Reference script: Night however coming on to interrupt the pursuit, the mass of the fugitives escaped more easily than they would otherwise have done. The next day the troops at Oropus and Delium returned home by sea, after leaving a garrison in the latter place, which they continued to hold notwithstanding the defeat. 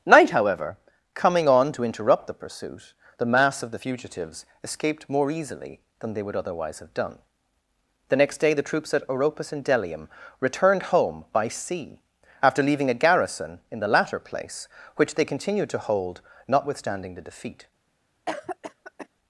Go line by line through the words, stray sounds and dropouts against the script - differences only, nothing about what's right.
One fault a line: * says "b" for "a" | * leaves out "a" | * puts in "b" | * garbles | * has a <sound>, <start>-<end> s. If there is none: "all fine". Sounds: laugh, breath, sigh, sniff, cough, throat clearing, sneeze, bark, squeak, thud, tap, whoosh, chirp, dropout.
* has a cough, 18.3-19.1 s